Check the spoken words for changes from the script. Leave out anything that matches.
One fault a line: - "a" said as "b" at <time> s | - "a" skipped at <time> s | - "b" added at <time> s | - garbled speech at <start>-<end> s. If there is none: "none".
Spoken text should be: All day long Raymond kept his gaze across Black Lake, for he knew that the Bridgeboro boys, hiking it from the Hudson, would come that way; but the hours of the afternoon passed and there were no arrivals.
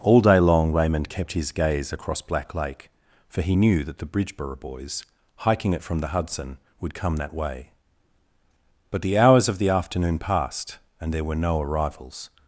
none